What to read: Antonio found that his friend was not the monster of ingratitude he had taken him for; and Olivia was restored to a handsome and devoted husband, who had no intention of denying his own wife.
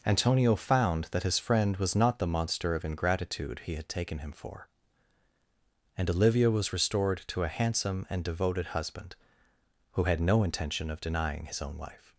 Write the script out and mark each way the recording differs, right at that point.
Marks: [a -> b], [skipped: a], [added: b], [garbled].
Antonio found that his friend was not the monster of ingratitude he had taken him for; and Olivia was restored to a handsome and devoted husband, who had no intention of denying his own wife.